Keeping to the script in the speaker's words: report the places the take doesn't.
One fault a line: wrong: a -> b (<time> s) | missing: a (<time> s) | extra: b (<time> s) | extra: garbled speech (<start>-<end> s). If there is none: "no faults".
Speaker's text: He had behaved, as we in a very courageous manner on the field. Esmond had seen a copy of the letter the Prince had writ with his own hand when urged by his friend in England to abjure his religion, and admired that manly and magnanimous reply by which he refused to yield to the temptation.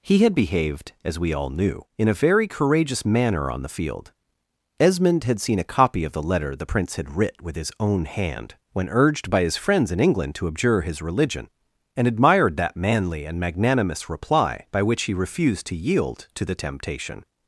extra: all knew (1.3 s)
wrong: friend -> friends (9.6 s)